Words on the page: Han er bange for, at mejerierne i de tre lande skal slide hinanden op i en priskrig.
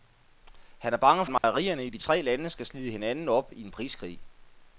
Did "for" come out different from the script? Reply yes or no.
yes